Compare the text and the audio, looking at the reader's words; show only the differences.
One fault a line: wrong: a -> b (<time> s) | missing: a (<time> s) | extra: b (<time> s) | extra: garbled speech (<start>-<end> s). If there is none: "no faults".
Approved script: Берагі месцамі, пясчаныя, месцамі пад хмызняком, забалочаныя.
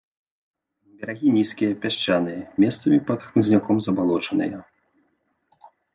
wrong: месцамі -> нізкія (1.4 s)